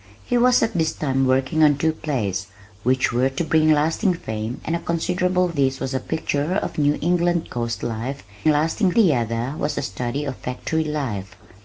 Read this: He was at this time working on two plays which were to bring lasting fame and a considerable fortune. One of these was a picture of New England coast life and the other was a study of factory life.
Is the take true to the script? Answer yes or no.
no